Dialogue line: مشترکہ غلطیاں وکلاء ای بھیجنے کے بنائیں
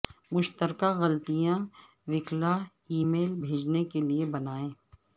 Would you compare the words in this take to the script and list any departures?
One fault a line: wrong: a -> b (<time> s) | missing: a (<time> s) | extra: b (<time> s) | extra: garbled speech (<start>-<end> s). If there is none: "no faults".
extra: میل (3.1 s)
extra: لئے (4.1 s)